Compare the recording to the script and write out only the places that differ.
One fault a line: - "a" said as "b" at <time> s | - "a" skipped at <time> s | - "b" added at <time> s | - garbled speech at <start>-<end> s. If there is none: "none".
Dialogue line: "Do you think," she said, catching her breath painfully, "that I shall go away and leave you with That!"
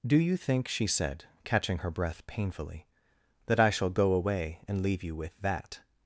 none